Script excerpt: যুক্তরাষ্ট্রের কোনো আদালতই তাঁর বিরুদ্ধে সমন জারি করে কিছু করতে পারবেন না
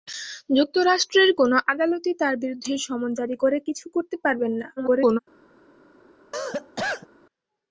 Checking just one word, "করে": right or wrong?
right